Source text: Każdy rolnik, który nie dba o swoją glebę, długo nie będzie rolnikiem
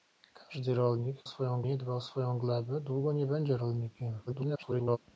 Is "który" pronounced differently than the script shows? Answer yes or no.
yes